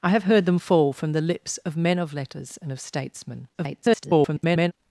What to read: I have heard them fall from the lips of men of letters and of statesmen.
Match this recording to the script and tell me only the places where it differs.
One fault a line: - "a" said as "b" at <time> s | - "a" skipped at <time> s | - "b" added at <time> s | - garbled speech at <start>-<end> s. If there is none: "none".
- garbled speech at 3.5-4.7 s